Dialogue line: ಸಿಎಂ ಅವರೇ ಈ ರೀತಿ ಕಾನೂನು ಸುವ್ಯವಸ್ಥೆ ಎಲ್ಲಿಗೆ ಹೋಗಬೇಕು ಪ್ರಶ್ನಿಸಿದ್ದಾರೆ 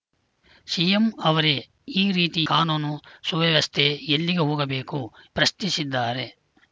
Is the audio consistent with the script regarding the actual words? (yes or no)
yes